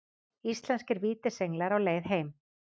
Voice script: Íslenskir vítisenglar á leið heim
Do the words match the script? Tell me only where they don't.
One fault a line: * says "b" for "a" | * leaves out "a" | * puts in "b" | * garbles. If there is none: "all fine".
all fine